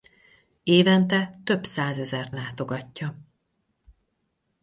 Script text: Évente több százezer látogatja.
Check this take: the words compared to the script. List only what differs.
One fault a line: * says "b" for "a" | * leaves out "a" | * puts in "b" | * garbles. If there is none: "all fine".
all fine